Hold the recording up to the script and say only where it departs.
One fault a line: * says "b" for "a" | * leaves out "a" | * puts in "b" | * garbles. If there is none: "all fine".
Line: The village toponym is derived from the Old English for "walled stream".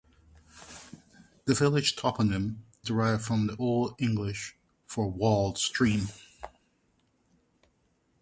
* leaves out "is"